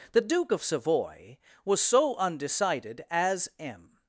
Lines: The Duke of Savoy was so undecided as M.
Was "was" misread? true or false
false